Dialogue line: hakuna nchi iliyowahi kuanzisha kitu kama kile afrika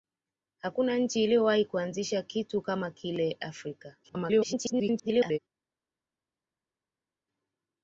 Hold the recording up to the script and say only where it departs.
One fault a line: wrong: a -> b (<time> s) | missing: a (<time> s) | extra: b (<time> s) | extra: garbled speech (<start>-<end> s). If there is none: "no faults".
extra: garbled speech (4.0-5.4 s)